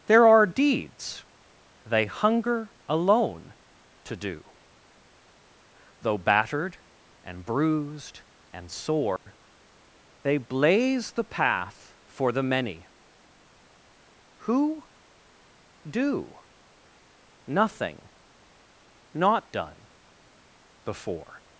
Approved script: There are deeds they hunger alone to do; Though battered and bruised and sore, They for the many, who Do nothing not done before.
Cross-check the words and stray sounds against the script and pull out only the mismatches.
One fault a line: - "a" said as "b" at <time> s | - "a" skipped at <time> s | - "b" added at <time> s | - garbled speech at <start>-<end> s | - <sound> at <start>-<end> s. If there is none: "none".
- dropout at 9.2-9.3 s
- "blaze the path" added at 10.4 s